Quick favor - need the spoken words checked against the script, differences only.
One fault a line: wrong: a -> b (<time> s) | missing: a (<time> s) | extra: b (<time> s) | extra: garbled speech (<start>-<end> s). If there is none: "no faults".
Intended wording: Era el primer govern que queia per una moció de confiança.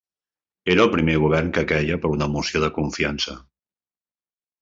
no faults